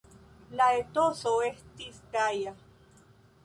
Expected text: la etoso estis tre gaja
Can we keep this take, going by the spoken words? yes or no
no